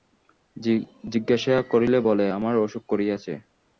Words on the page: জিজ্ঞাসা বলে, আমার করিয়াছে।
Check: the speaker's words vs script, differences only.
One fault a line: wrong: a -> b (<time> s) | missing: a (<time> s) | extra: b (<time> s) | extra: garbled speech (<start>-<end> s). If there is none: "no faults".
extra: করিলে (1.7 s)
extra: অসুখ (2.7 s)